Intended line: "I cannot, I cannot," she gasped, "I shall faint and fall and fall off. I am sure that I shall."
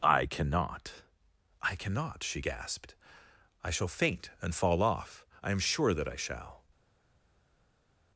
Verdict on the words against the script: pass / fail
fail